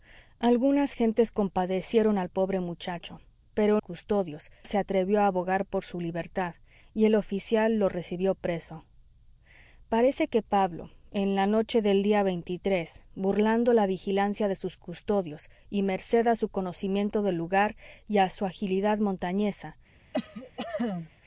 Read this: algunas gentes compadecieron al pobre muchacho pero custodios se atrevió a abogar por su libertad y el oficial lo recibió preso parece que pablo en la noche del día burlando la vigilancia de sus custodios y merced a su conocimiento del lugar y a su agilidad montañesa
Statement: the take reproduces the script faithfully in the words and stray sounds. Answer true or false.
false